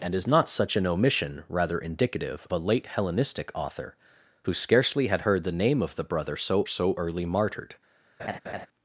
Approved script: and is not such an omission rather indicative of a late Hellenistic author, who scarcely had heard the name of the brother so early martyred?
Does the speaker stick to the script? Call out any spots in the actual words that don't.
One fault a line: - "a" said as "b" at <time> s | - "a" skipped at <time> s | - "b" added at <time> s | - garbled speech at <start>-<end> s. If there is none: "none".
- "of" skipped at 2.5 s
- "so" added at 6.6 s